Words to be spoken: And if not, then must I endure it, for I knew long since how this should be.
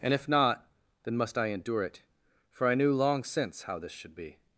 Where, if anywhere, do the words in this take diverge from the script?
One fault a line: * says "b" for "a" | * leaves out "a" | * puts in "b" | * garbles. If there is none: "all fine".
all fine